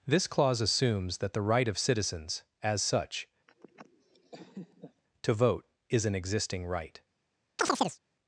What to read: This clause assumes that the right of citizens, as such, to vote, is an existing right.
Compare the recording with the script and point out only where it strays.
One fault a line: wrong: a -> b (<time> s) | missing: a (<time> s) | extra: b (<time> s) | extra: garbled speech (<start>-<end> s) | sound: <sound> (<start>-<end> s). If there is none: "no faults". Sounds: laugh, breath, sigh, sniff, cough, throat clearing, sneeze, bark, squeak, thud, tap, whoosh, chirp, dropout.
sound: laugh (3.5-5.0 s)
sound: chirp (7.6-8.0 s)